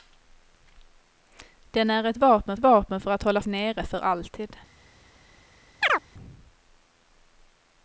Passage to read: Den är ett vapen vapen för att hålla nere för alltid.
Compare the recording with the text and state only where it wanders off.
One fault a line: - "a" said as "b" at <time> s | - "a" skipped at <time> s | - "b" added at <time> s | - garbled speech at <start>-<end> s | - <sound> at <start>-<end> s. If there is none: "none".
- chirp at 5.8-6.0 s